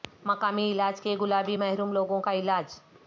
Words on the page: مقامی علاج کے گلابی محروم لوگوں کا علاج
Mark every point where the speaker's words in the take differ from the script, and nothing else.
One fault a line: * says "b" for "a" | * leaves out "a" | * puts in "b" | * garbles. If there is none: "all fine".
all fine